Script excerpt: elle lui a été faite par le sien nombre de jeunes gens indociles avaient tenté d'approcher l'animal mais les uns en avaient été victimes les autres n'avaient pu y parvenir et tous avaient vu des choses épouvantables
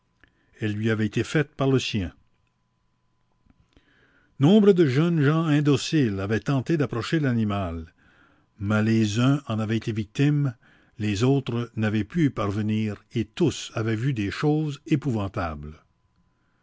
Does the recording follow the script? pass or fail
fail